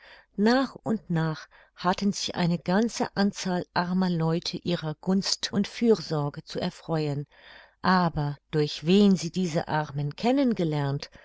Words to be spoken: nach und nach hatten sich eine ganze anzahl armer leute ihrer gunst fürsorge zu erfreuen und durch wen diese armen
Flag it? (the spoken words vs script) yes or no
yes